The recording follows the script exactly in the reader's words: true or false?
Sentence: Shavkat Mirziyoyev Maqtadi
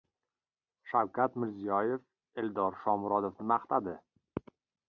false